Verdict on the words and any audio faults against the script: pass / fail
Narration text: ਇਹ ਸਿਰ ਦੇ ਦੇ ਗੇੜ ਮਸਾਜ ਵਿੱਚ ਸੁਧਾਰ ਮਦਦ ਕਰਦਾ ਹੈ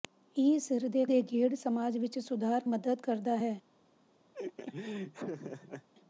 fail